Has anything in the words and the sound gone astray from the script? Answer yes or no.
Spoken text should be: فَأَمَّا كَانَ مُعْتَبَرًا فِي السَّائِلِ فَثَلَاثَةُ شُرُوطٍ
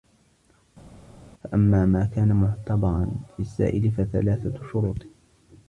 yes